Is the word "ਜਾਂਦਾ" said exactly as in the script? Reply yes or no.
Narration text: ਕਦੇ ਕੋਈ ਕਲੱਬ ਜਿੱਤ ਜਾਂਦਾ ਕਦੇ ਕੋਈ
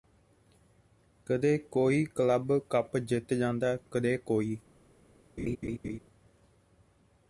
yes